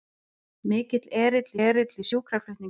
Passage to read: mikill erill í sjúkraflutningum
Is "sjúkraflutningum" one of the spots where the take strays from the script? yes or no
no